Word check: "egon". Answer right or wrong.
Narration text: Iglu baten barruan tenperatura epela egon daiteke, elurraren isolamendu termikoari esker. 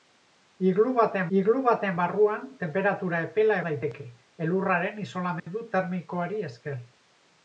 wrong